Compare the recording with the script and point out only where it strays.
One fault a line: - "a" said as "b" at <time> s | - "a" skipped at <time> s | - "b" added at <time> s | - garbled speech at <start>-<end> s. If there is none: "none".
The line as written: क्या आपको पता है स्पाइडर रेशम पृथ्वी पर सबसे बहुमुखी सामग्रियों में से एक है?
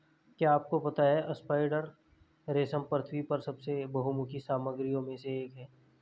none